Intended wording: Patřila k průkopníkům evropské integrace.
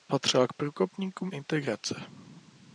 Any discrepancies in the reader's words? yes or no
yes